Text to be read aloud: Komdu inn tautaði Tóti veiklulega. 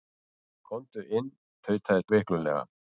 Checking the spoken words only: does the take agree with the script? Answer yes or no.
no